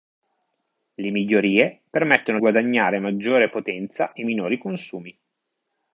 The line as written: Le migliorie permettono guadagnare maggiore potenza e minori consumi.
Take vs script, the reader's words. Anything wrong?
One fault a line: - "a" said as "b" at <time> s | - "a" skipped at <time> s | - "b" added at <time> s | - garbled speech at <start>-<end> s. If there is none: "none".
none